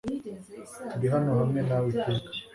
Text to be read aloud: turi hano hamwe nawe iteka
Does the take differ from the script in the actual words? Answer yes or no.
no